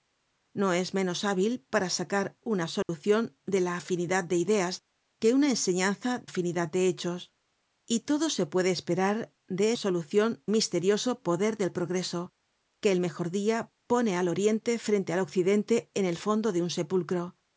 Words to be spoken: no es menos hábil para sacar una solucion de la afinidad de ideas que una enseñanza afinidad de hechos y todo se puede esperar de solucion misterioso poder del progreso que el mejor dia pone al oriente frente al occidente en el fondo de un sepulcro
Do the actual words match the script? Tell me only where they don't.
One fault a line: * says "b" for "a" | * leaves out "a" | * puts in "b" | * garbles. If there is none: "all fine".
all fine